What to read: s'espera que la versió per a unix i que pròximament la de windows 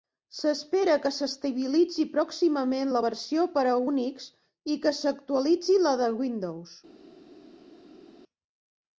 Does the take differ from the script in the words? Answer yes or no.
yes